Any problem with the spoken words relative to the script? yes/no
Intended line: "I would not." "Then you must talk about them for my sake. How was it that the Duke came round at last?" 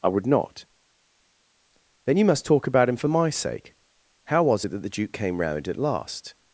yes